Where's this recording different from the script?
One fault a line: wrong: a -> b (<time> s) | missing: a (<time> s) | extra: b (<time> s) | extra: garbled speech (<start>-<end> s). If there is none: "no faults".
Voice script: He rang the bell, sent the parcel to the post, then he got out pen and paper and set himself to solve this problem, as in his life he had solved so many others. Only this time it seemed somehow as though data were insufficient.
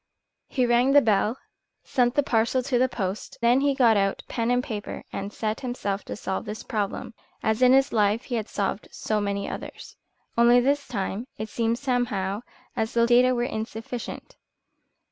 no faults